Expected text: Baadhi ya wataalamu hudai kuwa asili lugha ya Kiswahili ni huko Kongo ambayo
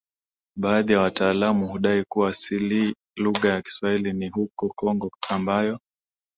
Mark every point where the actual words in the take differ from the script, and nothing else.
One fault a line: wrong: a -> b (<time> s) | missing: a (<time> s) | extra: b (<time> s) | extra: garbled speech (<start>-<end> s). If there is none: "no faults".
no faults